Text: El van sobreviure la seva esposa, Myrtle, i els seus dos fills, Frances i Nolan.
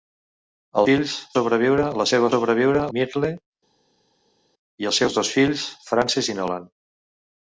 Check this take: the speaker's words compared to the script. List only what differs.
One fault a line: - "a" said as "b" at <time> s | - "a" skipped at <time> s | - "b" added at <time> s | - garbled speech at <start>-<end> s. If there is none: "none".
- "van" said as "fills" at 0.9 s
- "esposa" said as "sobreviure" at 2.3 s